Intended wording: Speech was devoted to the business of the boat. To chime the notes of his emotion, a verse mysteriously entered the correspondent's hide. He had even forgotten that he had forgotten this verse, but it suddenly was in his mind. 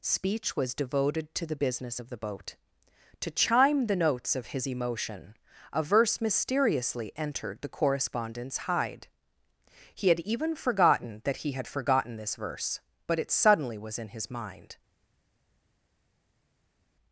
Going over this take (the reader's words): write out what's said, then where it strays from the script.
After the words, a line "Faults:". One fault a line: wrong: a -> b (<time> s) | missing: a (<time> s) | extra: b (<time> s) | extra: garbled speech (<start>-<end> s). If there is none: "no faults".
Speech was devoted to the business of the boat. To chime the notes of his emotion, a verse mysteriously entered the correspondent's hide. He had even forgotten that he had forgotten this verse, but it suddenly was in his mind.
Faults:
no faults